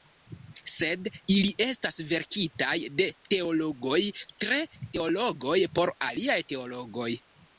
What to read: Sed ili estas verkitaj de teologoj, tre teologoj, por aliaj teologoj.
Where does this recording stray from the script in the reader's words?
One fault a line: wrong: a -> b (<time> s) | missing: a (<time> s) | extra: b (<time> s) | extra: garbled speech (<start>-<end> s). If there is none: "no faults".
no faults